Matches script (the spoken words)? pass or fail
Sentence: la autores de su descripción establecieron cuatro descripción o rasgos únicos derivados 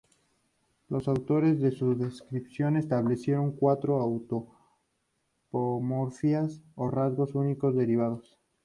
fail